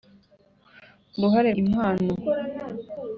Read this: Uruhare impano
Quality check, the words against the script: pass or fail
pass